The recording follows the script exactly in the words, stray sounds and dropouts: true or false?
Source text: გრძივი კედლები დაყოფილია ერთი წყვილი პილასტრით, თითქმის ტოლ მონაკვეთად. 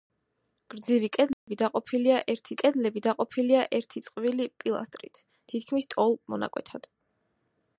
false